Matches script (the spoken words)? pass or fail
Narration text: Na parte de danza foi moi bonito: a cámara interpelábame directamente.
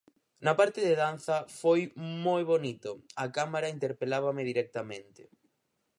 pass